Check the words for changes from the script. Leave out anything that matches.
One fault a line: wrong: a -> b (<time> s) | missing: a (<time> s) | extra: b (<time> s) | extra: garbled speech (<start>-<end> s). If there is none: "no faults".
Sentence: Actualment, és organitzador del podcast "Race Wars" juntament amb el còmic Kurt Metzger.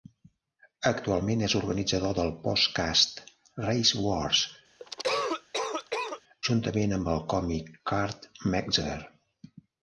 no faults